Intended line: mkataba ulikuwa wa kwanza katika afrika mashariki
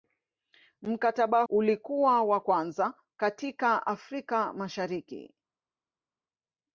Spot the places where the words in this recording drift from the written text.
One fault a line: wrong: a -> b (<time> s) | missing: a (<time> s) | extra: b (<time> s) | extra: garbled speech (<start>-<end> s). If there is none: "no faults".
no faults